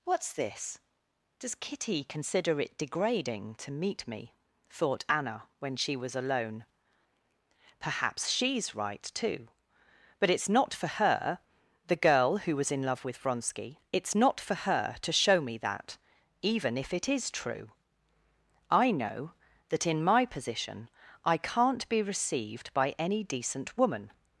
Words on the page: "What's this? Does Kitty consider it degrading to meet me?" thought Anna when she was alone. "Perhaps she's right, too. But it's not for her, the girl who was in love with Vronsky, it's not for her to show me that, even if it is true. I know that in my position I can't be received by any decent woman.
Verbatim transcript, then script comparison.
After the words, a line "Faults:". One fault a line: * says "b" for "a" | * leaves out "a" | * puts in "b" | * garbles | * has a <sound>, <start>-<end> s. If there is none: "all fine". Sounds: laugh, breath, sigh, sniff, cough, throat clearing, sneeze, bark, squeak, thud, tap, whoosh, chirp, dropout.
"What's this? Does Kitty consider it degrading to meet me?" thought Anna when she was alone. "Perhaps she's right, too. But it's not for her, the girl who was in love with Vronsky, it's not for her to show me that, even if it is true. I know that in my position I can't be received by any decent woman.
Faults:
all fine